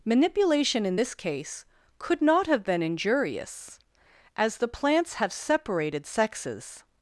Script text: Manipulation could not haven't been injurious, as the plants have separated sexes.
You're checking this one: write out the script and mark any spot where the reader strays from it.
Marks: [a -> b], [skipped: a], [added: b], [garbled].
Manipulation [added: in this case] could not [haven't -> have] been injurious, as the plants have separated sexes.